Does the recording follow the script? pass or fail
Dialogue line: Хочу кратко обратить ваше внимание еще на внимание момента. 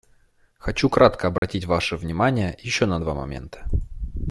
fail